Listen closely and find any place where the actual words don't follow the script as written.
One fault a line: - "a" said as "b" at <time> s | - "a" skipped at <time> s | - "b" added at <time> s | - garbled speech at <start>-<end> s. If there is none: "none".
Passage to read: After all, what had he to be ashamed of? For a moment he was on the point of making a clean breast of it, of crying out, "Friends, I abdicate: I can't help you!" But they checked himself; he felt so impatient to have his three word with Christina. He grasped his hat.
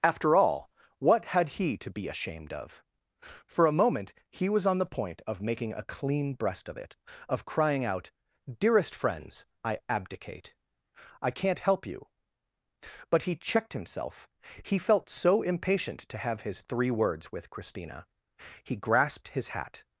- "Dearest" added at 8.6 s
- "they" said as "he" at 13.2 s
- "word" said as "words" at 16.9 s